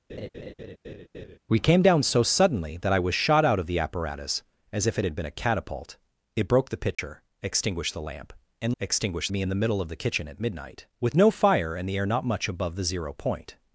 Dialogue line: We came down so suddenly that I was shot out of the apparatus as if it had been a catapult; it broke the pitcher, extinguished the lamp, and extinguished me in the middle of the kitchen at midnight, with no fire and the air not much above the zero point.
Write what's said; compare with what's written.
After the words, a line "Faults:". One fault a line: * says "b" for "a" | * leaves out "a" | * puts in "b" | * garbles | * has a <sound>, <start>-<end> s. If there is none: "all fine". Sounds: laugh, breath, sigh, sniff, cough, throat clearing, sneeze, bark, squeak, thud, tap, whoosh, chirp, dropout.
We came down so suddenly that I was shot out of the apparatus as if it had been a catapult; it broke the pitcher, extinguished the lamp, and extinguished me in the middle of the kitchen at midnight, with no fire and the air not much above the zero point.
Faults:
* has a laugh, 0.1-1.4 s
* has a dropout, 6.9-7.0 s